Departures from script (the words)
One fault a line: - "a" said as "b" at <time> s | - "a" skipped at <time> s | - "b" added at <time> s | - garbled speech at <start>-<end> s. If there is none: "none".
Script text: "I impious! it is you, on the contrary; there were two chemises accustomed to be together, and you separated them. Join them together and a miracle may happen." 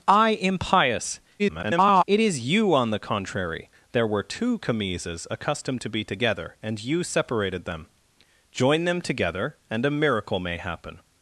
- garbled speech at 1.4-2.0 s